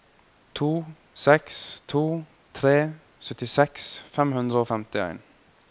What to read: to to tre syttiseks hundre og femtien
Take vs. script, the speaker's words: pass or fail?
fail